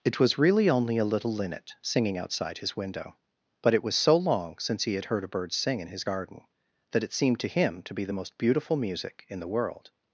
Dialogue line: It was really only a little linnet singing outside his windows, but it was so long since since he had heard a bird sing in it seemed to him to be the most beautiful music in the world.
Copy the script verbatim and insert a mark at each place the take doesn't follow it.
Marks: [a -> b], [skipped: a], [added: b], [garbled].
It was really only a little linnet singing outside his [windows, -> window] but it was so long since [skipped: since] he had heard a bird sing in [added: his garden that] it seemed to him to be the most beautiful music in the world.